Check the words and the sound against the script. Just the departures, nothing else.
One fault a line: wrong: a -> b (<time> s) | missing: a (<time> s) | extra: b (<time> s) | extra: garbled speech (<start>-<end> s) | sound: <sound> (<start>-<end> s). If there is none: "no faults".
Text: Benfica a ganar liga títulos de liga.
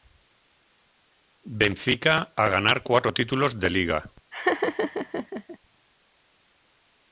wrong: liga -> cuatro (2.8 s)
sound: laugh (4.3-5.6 s)